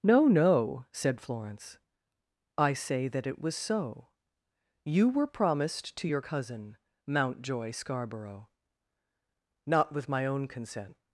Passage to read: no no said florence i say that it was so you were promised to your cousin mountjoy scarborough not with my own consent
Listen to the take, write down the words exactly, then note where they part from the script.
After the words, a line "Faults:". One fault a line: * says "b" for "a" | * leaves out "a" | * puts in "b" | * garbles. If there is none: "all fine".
no no said florence i say that it was so you were promised to your cousin mountjoy scarborough not with my own consent
Faults:
all fine